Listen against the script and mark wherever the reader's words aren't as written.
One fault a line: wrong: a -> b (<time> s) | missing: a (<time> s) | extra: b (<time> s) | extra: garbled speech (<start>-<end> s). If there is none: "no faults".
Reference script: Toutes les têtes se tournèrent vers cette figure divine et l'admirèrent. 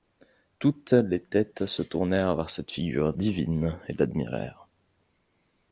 no faults